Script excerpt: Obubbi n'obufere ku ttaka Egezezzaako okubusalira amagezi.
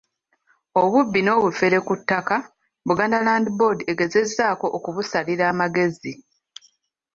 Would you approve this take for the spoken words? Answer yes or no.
no